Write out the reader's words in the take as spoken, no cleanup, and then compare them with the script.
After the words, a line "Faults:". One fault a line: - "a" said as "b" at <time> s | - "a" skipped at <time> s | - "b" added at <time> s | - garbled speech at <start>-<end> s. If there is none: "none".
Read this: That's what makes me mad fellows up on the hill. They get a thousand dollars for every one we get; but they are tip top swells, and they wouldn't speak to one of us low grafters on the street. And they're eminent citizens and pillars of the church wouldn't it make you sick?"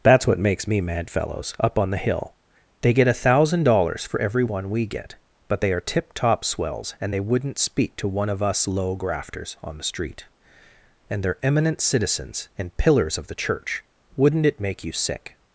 That's what makes me mad fellows up on the hill. They get a thousand dollars for every one we get; but they are tip top swells, and they wouldn't speak to one of us low grafters on the street. And they're eminent citizens and pillars of the church wouldn't it make you sick?"
Faults:
none